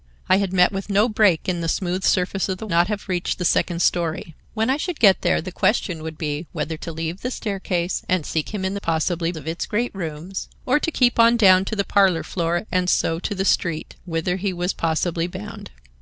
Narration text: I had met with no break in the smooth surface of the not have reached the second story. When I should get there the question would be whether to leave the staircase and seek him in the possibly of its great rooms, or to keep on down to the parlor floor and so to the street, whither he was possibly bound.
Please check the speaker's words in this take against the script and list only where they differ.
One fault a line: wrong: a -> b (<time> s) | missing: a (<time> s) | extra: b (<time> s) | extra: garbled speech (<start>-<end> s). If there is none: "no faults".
no faults